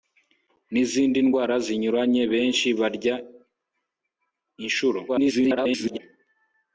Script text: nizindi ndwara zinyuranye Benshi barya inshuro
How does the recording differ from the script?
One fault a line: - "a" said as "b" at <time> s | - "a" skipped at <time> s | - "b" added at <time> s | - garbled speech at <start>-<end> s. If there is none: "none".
- garbled speech at 5.1-6.0 s